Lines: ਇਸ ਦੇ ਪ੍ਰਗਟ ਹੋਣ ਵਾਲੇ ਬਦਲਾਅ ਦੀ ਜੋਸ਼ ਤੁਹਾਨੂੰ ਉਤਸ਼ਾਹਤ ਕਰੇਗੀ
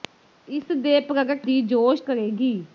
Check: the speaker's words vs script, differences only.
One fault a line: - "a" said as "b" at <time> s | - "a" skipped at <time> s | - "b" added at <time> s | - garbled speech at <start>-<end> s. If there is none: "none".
- "ਹੋਣ ਵਾਲੇ ਬਦਲਾਅ" skipped at 1.5 s
- "ਤੁਹਾਨੂੰ ਉਤਸ਼ਾਹਤ" skipped at 2.0 s